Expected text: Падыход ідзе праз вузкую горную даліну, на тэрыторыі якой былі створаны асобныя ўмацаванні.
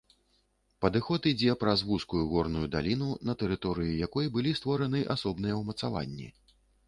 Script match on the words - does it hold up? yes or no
yes